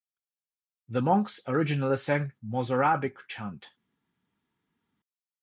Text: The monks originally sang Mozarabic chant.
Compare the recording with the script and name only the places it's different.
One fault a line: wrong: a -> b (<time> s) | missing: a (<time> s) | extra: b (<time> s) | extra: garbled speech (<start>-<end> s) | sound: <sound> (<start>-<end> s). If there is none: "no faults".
no faults